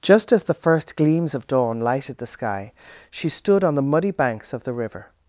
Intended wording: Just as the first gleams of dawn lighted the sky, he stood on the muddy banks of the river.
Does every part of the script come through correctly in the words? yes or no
no